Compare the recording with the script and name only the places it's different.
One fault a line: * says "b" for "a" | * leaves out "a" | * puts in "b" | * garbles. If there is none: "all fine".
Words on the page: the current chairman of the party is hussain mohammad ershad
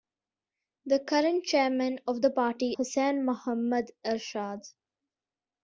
* leaves out "is"